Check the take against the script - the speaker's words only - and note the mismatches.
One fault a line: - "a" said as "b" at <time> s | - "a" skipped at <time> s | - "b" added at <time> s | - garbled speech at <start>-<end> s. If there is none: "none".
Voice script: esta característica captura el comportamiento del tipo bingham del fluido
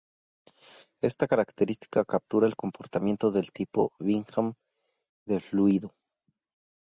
none